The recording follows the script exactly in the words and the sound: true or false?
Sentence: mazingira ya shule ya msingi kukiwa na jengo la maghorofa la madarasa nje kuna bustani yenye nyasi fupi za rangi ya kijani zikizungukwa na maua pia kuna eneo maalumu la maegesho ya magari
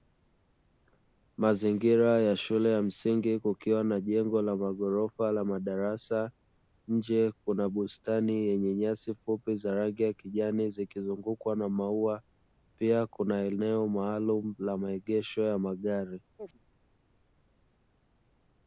false